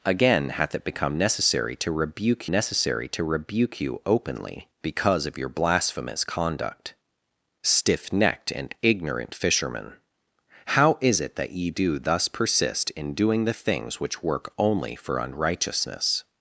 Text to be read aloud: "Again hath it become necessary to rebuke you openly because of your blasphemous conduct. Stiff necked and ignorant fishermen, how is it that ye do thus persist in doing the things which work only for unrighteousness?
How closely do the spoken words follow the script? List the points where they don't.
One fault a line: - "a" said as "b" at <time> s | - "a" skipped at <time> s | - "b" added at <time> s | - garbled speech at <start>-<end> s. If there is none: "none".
- "necessary to rebuke" added at 2.5 s